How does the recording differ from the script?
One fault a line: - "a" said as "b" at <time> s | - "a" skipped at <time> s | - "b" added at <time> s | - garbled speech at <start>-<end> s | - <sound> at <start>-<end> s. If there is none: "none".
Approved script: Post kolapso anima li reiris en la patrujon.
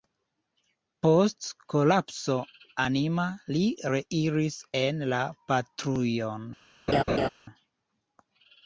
- laugh at 6.9-7.3 s